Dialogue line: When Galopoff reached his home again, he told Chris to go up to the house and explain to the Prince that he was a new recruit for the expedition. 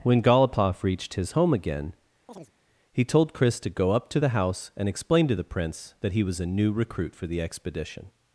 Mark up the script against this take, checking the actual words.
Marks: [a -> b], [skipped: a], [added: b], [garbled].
When Galopoff reached his home again, he told Chris to go up to the house and explain to the Prince that he was a new recruit for the expedition.